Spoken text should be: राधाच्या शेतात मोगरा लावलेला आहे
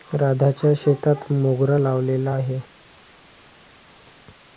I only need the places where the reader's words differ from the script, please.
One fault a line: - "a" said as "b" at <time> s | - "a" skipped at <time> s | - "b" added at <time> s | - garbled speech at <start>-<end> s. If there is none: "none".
none